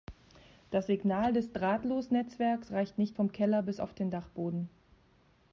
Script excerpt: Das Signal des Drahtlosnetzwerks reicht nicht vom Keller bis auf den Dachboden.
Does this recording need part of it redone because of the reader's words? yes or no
no